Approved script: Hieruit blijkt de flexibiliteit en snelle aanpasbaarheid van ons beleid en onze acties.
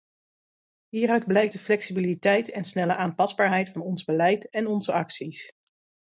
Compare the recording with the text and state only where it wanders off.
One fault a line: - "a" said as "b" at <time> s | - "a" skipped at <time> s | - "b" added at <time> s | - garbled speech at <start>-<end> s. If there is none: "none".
none